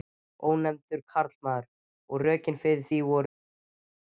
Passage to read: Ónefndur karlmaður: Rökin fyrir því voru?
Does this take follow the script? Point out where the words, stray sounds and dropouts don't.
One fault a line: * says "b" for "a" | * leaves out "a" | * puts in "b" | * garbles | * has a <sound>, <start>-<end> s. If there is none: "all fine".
* puts in "Og"